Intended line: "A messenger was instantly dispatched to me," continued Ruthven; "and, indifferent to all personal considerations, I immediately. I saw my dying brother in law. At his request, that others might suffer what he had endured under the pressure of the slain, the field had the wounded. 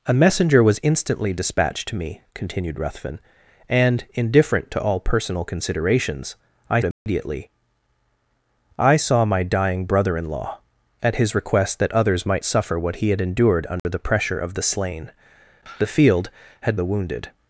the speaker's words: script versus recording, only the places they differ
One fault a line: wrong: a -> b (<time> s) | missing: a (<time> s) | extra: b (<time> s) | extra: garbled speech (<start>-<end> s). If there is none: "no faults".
no faults